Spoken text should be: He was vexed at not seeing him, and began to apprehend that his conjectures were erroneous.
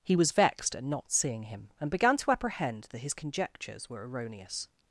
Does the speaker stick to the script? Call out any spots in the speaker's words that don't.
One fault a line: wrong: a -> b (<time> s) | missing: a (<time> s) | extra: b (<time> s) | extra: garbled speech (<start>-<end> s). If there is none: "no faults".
no faults